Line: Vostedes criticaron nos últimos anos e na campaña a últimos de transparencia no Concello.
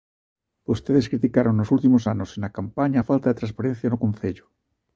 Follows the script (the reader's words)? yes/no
no